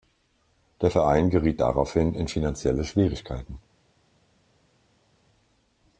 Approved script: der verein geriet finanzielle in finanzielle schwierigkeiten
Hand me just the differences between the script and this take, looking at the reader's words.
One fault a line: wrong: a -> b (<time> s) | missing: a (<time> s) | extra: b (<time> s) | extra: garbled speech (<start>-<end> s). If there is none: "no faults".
wrong: finanzielle -> daraufhin (1.6 s)